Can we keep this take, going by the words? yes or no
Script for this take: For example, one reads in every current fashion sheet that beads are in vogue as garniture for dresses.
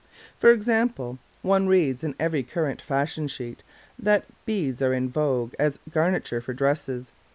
yes